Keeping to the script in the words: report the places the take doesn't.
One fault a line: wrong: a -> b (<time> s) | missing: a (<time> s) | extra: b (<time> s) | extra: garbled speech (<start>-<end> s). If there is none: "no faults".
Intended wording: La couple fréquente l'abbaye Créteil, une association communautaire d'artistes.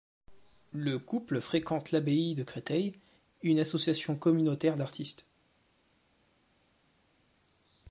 wrong: La -> Le (0.7 s)
extra: de (2.3 s)